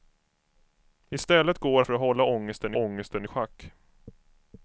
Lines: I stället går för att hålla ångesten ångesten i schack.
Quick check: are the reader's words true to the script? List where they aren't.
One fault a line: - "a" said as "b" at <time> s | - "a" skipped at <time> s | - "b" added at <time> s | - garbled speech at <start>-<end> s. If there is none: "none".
none